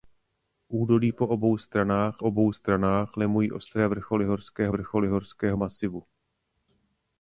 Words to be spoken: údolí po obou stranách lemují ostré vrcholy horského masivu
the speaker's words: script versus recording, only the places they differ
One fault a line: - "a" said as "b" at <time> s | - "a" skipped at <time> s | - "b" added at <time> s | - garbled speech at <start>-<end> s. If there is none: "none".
- "obou stranách" added at 2.2 s
- "vrcholy horského" added at 4.7 s